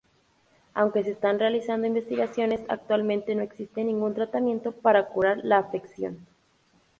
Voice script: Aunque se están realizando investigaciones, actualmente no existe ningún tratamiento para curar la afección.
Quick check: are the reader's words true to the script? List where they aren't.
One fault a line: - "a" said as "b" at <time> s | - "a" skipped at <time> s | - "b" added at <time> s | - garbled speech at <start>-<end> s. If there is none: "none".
none